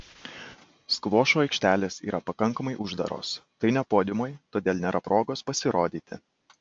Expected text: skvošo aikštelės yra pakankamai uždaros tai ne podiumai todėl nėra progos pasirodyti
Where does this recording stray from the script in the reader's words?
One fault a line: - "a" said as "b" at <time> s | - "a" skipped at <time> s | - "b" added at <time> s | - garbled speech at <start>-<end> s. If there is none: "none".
none